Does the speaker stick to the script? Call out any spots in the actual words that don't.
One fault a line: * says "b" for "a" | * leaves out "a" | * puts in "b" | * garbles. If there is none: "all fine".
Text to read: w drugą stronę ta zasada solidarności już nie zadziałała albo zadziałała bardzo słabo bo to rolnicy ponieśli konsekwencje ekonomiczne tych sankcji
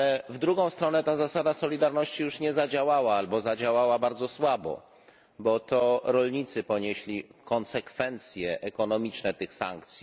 all fine